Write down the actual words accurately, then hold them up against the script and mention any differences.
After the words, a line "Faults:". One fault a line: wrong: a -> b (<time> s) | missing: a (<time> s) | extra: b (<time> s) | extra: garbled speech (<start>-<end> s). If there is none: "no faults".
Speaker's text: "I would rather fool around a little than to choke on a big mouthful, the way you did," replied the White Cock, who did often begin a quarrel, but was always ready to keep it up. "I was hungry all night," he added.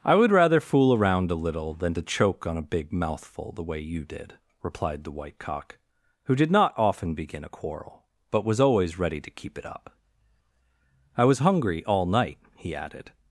"I would rather fool around a little than to choke on a big mouthful, the way you did," replied the White Cock, who did not often begin a quarrel, but was always ready to keep it up. "I was hungry all night," he added.
Faults:
extra: not (6.5 s)